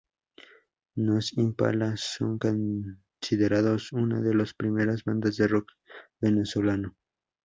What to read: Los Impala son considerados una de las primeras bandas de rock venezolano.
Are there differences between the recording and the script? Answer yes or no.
no